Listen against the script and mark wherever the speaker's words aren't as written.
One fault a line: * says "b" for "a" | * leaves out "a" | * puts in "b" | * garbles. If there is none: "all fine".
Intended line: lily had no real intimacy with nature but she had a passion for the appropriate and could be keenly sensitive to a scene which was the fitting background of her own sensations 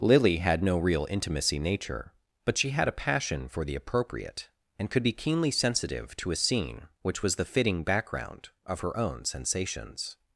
* leaves out "with"